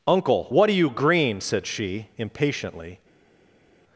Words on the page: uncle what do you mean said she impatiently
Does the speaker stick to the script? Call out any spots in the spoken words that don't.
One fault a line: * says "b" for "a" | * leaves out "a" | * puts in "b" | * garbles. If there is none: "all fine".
* says "green" for "mean"